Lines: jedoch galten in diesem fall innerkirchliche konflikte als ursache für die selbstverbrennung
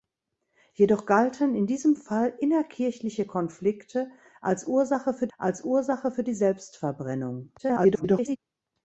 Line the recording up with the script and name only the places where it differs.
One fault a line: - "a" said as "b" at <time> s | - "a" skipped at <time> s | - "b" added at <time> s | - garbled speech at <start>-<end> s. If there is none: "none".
- "als ursache für" added at 5.4 s
- garbled speech at 7.6-8.4 s